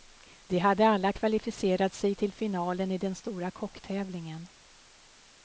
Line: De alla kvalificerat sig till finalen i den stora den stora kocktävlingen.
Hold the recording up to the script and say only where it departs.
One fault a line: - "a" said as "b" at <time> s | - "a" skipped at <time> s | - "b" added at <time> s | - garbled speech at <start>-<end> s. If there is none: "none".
- "hade" added at 0.6 s
- "den stora" skipped at 3.5 s